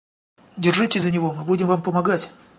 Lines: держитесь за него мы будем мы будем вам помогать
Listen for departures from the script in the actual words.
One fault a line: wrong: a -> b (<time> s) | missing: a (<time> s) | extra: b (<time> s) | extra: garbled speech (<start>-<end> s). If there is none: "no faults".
missing: мы будем (1.7 s)